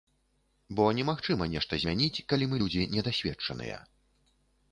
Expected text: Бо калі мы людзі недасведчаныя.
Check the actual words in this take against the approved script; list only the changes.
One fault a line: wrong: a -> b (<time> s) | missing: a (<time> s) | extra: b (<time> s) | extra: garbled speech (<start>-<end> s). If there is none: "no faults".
extra: немагчыма нешта змяніць (1.0 s)